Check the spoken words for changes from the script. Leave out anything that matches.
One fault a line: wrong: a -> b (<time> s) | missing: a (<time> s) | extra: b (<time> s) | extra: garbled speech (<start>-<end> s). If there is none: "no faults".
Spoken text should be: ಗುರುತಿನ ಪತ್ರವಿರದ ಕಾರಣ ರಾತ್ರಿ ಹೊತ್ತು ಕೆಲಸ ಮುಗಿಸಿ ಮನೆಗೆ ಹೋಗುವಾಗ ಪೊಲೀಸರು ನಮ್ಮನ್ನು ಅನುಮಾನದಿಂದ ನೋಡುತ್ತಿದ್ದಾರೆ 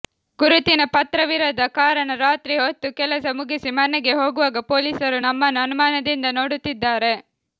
no faults